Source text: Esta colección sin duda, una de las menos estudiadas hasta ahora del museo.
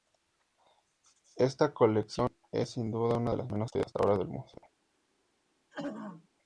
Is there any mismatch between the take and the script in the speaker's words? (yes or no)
yes